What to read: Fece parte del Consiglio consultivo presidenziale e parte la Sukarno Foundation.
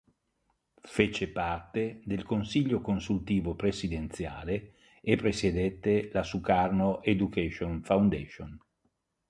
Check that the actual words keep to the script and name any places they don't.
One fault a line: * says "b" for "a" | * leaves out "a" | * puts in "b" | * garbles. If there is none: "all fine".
* says "presiedette" for "parte"
* puts in "Education"